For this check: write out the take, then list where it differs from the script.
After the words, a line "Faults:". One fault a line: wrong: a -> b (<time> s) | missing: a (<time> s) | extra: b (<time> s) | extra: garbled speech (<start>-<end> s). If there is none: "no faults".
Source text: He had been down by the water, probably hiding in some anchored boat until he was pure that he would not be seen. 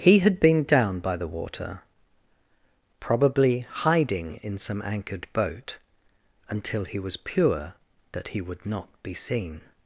He had been down by the water, probably hiding in some anchored boat until he was pure that he would not be seen.
Faults:
no faults